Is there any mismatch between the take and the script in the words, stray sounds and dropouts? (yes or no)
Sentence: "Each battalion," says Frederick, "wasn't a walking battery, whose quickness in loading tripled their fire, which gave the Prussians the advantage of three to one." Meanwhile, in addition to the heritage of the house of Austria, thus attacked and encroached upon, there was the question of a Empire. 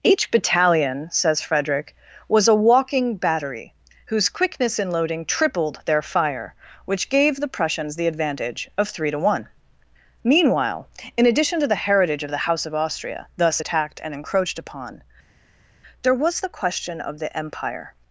yes